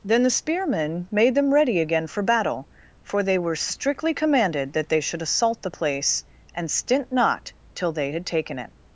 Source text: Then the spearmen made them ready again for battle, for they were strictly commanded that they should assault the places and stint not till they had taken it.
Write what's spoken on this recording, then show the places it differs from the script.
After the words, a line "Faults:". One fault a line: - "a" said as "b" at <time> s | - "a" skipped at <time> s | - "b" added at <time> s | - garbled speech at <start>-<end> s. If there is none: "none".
Then the spearmen made them ready again for battle, for they were strictly commanded that they should assault the place and stint not till they had taken it.
Faults:
- "places" said as "place" at 5.7 s